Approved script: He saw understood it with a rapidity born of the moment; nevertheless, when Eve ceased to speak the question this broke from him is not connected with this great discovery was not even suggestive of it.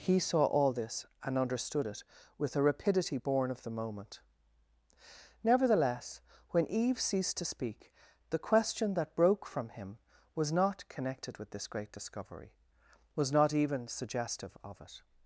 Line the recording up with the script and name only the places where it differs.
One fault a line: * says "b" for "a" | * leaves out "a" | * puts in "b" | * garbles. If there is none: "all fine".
* puts in "all this and"
* says "that" for "this"
* says "was" for "is"